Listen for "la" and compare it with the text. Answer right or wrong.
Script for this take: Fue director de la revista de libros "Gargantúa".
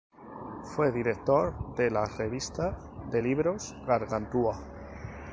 right